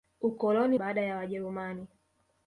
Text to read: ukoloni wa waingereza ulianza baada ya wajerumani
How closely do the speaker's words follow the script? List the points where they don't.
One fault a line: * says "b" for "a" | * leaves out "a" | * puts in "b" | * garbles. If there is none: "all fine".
* leaves out "wa waingereza ulianza"